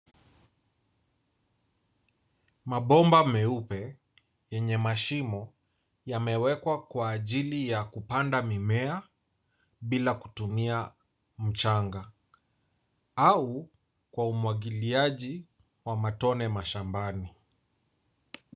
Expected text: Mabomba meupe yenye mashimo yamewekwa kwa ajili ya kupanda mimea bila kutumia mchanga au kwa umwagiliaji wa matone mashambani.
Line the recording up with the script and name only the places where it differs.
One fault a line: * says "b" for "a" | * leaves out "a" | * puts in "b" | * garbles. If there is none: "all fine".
all fine